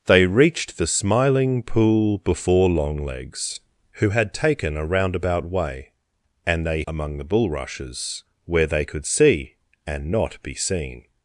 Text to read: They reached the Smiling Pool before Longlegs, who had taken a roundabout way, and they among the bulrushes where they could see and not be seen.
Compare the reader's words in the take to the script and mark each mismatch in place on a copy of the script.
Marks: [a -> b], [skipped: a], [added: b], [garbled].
They reached the Smiling Pool before Longlegs, who had taken a roundabout way, and they among the bulrushes where they could see and not be seen.